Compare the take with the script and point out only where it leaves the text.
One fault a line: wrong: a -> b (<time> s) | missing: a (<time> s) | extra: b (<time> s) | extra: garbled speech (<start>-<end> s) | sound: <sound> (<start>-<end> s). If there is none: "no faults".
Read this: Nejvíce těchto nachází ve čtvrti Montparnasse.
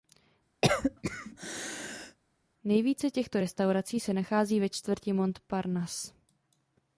sound: cough (0.6-2.2 s)
extra: restaurací se (3.4 s)